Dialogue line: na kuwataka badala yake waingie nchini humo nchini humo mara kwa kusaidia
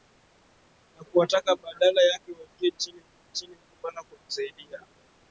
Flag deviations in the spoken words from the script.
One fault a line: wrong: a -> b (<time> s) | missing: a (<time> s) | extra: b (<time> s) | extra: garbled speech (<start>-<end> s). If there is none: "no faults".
no faults